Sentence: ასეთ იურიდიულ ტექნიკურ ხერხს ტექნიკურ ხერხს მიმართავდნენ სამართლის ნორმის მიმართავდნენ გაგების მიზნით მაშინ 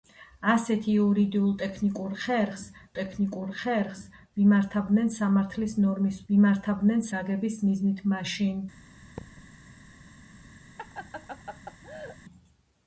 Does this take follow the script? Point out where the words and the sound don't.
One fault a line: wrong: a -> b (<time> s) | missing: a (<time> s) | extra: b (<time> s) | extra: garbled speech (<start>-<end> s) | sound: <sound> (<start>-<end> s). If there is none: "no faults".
sound: thud (9.2-9.5 s)
sound: laugh (10.8-12.2 s)